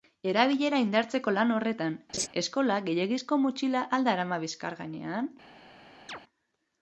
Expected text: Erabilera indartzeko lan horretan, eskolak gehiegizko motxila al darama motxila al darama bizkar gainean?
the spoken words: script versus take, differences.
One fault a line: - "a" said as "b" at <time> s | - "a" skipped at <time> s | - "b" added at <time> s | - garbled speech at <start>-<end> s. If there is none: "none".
- "motxila al darama" skipped at 4.4 s